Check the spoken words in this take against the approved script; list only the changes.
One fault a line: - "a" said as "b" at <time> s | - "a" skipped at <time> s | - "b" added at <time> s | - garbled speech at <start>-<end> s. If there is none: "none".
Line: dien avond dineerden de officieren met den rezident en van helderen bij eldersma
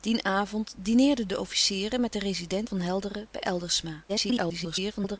- "en" skipped at 2.7 s
- garbled speech at 4.1-5.2 s